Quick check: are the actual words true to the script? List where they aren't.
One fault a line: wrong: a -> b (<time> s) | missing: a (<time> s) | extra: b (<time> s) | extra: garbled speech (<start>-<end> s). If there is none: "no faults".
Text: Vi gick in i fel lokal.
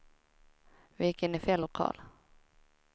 no faults